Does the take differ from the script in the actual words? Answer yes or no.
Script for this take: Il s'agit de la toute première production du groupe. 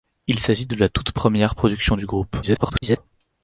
yes